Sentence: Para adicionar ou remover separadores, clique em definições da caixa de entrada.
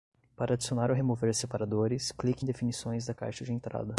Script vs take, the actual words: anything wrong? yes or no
no